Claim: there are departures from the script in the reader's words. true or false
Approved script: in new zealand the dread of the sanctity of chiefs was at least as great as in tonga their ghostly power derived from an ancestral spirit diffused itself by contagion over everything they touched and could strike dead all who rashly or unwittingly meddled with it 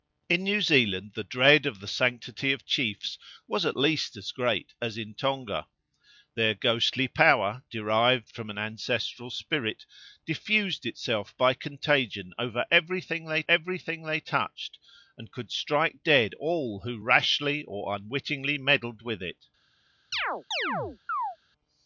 true